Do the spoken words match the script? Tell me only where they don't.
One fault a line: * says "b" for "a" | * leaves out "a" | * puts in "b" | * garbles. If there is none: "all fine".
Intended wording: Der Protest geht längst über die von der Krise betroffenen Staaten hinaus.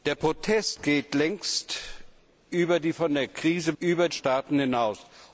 * says "über" for "betroffenen"